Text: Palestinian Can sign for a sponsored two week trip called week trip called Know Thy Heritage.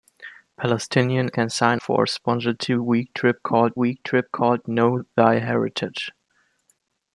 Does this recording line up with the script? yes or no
yes